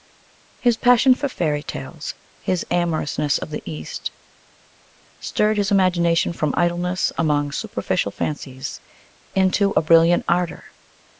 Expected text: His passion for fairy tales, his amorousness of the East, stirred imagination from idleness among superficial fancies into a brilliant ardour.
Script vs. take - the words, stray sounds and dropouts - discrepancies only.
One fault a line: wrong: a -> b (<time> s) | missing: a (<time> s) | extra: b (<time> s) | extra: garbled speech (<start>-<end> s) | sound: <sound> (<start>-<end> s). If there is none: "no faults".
extra: his (5.6 s)